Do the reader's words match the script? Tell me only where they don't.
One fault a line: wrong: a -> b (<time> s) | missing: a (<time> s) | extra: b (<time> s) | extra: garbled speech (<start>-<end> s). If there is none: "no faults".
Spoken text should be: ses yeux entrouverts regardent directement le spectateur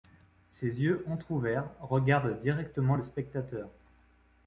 no faults